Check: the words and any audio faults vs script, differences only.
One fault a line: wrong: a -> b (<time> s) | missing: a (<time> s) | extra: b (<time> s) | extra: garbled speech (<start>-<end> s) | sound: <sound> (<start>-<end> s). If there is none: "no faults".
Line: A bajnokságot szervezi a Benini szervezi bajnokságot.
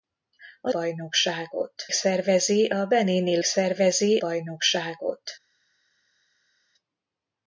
no faults